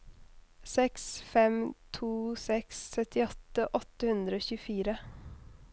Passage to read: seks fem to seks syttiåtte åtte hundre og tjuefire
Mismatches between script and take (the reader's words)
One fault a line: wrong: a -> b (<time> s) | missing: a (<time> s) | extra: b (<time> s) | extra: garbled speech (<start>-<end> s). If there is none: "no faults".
no faults